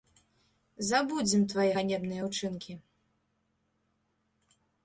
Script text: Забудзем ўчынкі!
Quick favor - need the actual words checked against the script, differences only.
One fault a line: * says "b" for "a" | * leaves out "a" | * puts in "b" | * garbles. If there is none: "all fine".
* puts in "твае ганебныя"